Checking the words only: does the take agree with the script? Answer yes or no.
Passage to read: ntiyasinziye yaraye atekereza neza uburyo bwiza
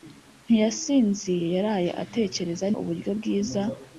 no